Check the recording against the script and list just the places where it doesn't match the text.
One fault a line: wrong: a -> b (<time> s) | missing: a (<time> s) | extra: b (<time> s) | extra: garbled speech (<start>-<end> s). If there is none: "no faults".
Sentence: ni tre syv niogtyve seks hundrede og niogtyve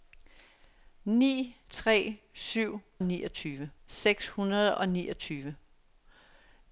no faults